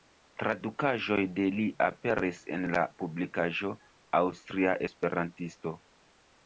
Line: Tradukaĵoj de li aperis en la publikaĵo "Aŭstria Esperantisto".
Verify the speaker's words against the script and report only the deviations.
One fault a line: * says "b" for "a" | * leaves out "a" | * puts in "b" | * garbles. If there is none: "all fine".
all fine